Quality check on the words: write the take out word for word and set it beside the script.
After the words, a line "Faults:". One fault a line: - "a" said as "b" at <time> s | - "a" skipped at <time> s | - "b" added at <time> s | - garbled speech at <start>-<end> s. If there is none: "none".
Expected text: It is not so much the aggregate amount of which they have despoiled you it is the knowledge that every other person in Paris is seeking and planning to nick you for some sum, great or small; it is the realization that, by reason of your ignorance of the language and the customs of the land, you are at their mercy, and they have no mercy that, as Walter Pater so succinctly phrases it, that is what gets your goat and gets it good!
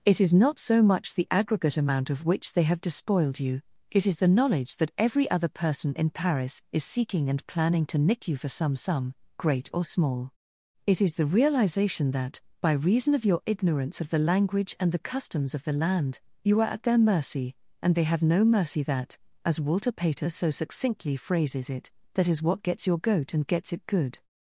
It is not so much the aggregate amount of which they have despoiled you it is the knowledge that every other person in Paris is seeking and planning to nick you for some sum, great or small; it is the realization that, by reason of your ignorance of the language and the customs of the land, you are at their mercy, and they have no mercy that, as Walter Pater so succinctly phrases it, that is what gets your goat and gets it good!
Faults:
none